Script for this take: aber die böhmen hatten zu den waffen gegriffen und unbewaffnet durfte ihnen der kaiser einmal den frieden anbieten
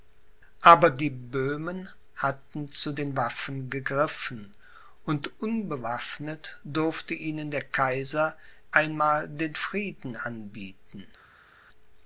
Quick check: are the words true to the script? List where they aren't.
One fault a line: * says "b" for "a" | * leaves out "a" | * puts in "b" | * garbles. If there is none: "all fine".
all fine